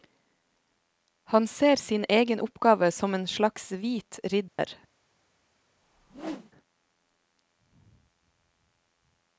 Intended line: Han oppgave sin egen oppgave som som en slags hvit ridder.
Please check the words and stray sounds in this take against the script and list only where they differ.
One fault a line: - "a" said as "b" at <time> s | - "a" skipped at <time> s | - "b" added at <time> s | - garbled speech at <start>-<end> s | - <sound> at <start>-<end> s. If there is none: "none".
- "oppgave" said as "ser" at 1.5 s
- "som" skipped at 3.1 s
- dropout at 4.5-4.6 s
- whoosh at 5.8-6.5 s